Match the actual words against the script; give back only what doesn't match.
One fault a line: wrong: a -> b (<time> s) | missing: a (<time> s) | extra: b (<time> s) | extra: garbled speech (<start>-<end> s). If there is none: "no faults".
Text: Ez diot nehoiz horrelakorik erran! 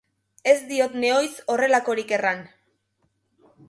no faults